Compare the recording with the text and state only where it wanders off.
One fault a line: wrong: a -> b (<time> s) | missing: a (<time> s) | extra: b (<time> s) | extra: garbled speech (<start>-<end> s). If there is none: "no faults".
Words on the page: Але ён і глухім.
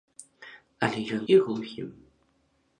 no faults